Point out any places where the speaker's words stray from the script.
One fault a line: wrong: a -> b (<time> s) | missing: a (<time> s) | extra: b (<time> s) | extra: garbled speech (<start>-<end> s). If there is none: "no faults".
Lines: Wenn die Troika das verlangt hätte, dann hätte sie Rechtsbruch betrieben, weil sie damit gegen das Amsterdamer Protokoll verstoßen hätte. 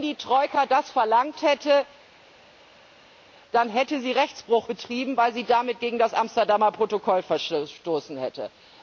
no faults